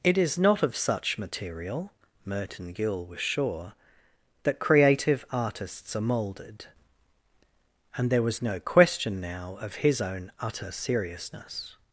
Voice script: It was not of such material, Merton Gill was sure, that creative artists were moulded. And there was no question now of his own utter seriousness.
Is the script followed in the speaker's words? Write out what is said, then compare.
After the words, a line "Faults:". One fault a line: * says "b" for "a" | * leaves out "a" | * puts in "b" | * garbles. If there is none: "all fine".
It is not of such material, Merton Gill was sure, that creative artists are moulded. And there was no question now of his own utter seriousness.
Faults:
* says "is" for "was"
* says "are" for "were"